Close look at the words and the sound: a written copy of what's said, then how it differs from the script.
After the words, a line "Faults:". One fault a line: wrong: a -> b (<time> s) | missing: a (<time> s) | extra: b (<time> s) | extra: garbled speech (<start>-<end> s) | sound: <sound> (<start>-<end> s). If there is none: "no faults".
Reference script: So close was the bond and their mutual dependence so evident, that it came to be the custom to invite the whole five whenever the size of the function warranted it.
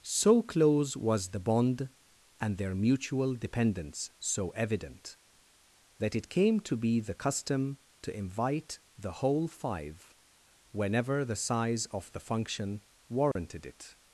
So close was the bond and their mutual dependence so evident, that it came to be the custom to invite the whole five whenever the size of the function warranted it.
Faults:
sound: dropout (13.3-13.4 s)